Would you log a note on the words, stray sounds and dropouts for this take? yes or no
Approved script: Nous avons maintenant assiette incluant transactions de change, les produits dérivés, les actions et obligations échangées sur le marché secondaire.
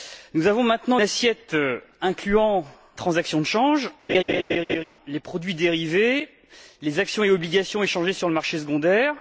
yes